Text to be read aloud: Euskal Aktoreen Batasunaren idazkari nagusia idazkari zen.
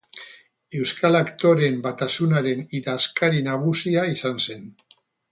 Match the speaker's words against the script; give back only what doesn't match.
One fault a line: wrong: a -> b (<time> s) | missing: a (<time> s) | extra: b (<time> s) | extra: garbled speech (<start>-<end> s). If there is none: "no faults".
wrong: idazkari -> izan (4.2 s)